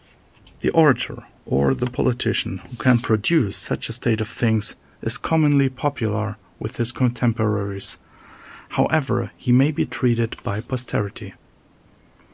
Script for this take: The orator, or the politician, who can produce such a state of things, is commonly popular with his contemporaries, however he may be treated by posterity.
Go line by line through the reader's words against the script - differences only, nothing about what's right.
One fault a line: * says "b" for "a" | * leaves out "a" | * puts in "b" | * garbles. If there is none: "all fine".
all fine